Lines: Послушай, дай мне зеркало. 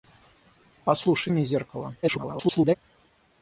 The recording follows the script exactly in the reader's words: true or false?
false